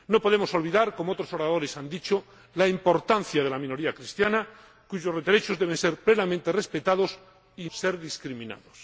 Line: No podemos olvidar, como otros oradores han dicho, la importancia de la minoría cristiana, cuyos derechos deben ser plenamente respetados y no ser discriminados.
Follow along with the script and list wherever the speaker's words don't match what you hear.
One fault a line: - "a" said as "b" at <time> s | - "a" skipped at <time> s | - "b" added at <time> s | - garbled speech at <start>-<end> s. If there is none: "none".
- "no" skipped at 7.7 s